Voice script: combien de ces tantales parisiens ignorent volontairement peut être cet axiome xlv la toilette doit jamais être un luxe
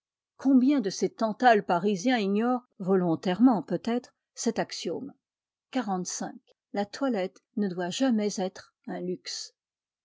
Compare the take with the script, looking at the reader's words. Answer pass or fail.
fail